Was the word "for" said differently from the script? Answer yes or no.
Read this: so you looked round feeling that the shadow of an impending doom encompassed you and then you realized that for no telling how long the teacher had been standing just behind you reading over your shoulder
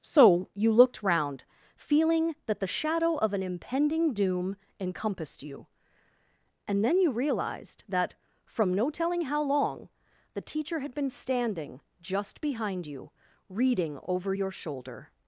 yes